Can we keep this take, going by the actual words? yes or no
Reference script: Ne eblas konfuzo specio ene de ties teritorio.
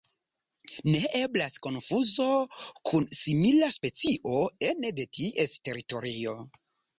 no